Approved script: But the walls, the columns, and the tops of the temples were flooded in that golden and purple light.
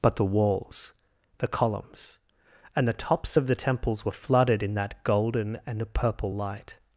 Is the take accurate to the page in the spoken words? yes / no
yes